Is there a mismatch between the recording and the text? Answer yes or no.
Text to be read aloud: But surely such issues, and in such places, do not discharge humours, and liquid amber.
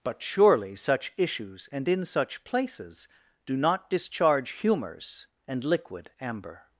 no